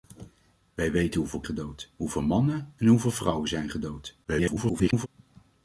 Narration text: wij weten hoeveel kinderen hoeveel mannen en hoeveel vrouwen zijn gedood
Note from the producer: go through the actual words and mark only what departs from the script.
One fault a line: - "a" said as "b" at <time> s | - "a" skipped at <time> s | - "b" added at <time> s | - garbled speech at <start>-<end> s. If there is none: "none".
- "kinderen" said as "gedood" at 1.4 s
- garbled speech at 4.2-5.1 s